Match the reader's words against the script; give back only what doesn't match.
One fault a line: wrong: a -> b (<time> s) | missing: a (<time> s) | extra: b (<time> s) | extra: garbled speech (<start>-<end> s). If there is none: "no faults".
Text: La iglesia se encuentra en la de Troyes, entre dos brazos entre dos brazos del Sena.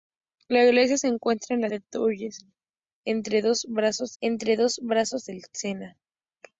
no faults